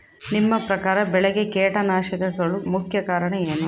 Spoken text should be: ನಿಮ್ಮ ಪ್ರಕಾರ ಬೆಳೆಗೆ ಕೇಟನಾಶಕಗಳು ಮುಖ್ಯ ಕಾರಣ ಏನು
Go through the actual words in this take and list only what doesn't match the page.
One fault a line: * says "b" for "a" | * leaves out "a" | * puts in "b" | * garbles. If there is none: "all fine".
all fine